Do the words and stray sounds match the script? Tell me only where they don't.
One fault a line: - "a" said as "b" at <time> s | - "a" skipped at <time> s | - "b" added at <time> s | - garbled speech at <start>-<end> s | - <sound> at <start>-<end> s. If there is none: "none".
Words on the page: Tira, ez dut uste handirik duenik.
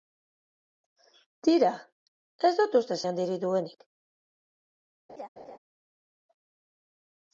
- laugh at 5.1-5.6 s